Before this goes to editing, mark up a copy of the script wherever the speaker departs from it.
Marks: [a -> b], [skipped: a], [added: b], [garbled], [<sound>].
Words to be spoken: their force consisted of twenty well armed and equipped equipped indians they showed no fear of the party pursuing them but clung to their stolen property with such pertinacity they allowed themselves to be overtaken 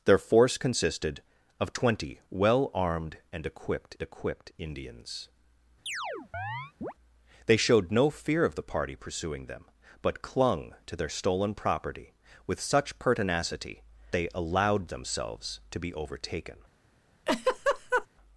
their force consisted of twenty well armed and equipped equipped indians [chirp] they showed no fear of the party pursuing them but clung to their stolen property with such pertinacity they allowed themselves to be overtaken [laugh]